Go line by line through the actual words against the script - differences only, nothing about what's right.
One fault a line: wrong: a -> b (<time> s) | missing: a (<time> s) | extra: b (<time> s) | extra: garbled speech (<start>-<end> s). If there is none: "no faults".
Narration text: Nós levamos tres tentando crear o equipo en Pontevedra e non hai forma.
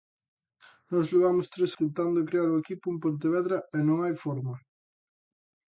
no faults